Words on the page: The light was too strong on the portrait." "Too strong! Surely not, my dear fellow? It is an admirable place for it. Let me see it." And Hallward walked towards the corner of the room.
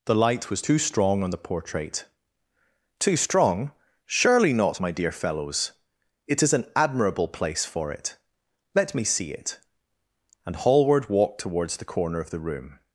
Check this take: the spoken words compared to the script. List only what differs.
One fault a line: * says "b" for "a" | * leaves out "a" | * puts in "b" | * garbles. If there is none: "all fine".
* says "fellows" for "fellow"